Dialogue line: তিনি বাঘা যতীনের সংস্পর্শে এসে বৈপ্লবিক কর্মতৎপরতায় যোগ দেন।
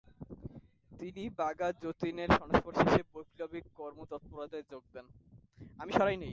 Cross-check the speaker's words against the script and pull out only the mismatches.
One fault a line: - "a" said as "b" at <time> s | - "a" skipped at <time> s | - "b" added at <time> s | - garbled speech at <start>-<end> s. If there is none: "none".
none